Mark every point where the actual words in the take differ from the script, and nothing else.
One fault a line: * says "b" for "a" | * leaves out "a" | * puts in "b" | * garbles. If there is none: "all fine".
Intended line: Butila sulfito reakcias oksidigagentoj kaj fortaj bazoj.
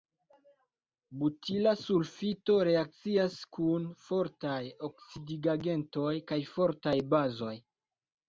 * puts in "kun fortaj"